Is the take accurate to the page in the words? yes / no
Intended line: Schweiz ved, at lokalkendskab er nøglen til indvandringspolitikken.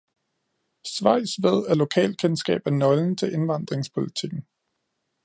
yes